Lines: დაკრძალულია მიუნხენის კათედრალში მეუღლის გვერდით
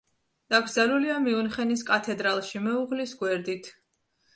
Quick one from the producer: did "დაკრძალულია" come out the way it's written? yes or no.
yes